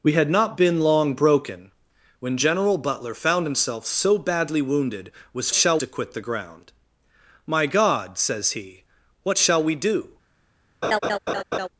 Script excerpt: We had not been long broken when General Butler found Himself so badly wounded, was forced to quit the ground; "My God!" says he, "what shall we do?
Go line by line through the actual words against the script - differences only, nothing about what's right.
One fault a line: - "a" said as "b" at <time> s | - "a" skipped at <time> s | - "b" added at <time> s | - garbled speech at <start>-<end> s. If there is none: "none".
- "forced" said as "shall" at 5.5 s